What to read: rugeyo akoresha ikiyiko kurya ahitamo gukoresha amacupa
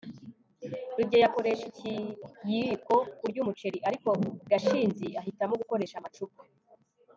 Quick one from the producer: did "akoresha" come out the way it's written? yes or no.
yes